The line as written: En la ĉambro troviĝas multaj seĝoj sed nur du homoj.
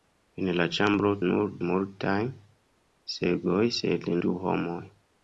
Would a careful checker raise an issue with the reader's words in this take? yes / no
yes